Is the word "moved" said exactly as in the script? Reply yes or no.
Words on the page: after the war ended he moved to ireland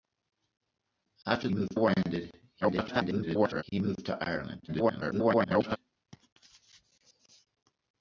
yes